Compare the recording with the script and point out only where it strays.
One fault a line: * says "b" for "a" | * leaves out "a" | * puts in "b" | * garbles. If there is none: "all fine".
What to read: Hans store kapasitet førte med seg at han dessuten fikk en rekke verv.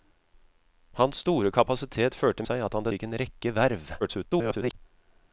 * leaves out "med"
* leaves out "dessuten"
* garbles